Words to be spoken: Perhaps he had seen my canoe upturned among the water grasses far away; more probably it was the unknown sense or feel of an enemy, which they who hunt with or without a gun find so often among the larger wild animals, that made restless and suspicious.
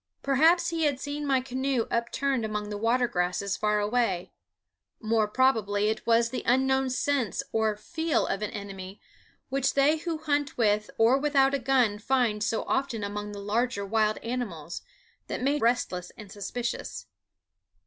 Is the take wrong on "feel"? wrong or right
right